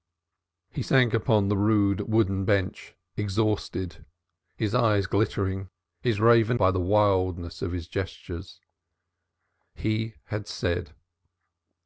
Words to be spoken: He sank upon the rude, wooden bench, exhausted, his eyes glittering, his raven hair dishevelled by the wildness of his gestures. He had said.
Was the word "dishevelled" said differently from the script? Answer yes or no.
yes